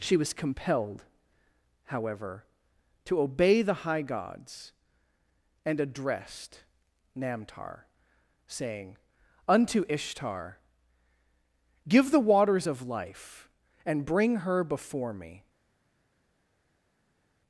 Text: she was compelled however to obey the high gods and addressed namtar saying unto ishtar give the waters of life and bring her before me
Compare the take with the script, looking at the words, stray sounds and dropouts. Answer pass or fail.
pass